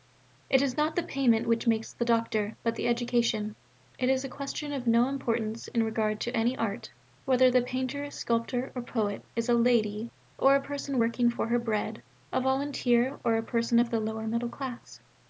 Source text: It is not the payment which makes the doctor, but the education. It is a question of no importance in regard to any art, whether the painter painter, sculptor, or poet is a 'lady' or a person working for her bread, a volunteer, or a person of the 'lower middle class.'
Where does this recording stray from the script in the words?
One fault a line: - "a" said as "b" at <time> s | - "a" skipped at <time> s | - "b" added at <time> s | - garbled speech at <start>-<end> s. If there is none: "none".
- "painter" skipped at 8.1 s